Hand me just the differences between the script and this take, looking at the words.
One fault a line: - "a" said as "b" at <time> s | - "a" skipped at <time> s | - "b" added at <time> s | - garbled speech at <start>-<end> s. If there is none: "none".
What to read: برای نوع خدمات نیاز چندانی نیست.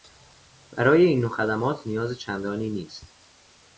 - "این" added at 1.1 s